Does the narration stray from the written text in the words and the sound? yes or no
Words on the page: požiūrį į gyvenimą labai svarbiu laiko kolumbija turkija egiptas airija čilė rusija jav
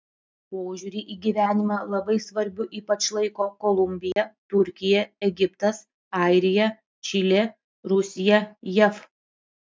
yes